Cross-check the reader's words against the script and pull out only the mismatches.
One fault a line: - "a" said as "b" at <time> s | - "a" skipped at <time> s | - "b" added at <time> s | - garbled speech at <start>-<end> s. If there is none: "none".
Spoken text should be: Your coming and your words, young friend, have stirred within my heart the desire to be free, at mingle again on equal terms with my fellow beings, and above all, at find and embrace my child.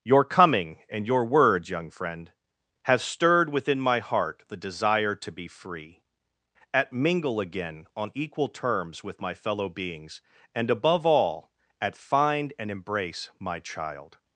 none